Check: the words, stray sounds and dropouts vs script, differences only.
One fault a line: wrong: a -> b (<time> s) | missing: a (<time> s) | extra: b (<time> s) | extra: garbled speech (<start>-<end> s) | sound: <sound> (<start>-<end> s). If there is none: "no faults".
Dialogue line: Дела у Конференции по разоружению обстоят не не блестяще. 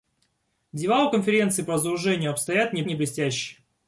no faults